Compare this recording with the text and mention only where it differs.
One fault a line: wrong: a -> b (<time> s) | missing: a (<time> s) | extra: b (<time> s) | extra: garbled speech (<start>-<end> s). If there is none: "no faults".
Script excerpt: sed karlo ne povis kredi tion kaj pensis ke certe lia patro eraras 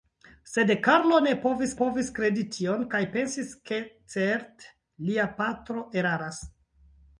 extra: povis (1.8 s)